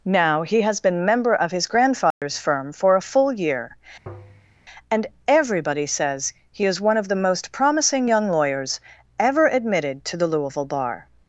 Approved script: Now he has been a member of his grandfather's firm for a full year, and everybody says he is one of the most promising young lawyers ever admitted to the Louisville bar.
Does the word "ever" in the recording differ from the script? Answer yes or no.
no